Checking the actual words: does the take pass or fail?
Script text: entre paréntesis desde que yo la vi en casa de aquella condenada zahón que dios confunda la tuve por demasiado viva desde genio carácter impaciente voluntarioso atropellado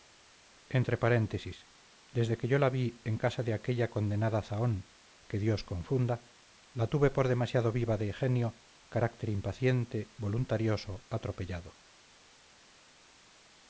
fail